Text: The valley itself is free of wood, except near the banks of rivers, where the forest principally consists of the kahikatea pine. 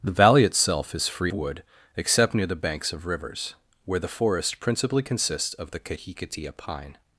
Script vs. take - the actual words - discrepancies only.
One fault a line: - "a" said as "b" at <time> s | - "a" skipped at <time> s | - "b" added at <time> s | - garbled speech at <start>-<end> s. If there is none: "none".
- "of" skipped at 1.3 s